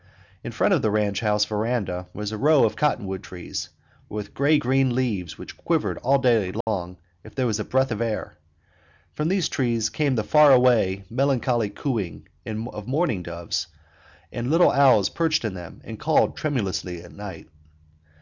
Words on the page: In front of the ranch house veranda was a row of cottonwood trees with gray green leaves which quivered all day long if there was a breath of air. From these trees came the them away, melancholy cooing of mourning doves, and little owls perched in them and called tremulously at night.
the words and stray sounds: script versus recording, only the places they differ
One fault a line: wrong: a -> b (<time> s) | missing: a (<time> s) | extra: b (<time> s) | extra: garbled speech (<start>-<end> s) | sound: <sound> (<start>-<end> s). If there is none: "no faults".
sound: dropout (6.6-6.7 s)
wrong: them -> far (10.2 s)